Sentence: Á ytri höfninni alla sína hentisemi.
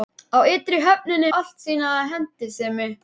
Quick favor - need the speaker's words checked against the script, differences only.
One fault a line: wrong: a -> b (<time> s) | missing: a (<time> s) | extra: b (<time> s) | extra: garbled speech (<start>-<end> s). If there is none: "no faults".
no faults